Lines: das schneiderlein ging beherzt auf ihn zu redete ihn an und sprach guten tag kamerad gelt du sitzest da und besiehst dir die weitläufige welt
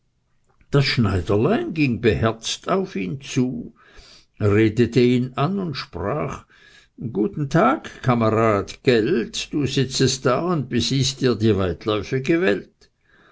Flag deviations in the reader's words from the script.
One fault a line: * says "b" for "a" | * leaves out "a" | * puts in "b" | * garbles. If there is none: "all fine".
all fine